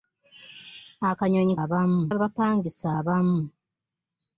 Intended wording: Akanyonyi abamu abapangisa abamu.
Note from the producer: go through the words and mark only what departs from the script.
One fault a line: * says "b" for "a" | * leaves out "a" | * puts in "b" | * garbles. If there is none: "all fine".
all fine